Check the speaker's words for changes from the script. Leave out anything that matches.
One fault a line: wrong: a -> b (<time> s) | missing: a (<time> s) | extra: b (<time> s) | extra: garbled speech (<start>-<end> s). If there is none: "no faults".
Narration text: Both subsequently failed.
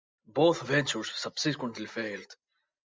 extra: ventures (0.6 s)